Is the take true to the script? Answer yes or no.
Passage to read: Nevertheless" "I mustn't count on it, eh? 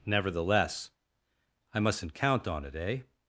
yes